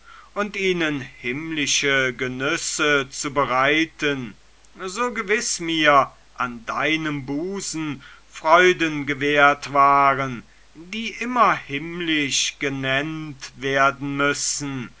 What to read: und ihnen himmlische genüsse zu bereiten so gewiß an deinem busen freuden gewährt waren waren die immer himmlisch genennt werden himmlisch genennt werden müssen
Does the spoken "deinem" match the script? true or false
true